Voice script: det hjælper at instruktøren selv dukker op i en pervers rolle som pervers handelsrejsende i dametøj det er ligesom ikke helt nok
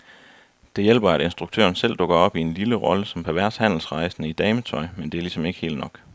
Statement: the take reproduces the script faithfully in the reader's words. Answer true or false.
false